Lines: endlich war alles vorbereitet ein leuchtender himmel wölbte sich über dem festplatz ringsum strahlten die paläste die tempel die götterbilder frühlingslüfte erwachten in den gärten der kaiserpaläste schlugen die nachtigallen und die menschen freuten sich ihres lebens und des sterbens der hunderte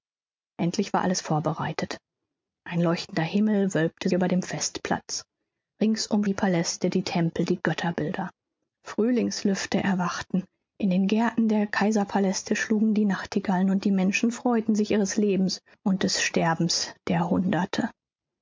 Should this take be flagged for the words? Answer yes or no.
yes